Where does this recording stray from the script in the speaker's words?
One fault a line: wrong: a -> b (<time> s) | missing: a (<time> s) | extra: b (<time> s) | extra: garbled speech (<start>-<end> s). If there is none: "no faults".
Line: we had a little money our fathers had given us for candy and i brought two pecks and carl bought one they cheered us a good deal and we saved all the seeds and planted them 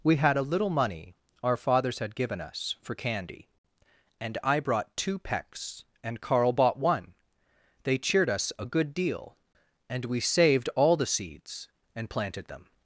no faults